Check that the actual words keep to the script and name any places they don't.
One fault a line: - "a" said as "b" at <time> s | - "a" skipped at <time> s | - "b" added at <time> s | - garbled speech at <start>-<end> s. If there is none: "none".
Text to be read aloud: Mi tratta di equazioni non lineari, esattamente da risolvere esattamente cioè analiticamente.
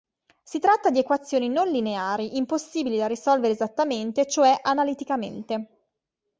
- "Mi" said as "Si" at 0.4 s
- "esattamente" said as "impossibili" at 2.4 s